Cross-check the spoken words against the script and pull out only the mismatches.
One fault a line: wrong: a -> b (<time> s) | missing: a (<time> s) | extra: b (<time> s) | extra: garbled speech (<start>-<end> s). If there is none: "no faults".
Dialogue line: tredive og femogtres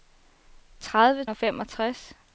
no faults